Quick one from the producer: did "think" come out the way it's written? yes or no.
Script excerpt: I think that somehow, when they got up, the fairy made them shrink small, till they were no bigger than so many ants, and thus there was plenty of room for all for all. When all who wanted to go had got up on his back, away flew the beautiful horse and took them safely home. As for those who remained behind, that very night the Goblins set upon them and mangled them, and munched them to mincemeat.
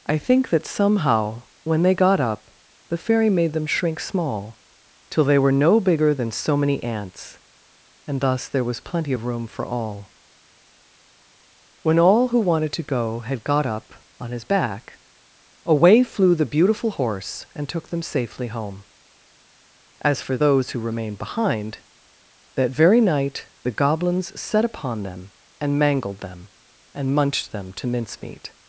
yes